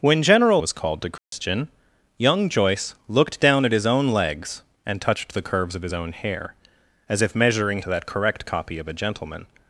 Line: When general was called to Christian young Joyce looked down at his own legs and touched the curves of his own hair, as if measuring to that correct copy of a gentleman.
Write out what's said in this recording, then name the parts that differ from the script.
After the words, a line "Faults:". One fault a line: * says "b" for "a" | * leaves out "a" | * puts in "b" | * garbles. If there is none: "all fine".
When general was called to Christian young Joyce looked down at his own legs and touched the curves of his own hair, as if measuring to that correct copy of a gentleman.
Faults:
all fine